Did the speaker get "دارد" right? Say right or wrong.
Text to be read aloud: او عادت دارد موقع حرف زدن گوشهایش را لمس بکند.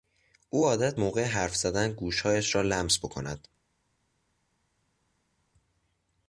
wrong